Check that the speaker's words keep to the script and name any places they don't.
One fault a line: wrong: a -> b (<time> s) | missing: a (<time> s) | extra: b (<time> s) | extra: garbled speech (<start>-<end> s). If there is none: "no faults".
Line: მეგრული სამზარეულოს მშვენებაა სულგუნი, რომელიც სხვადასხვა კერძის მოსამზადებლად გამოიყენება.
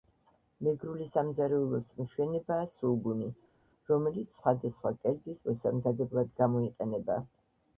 no faults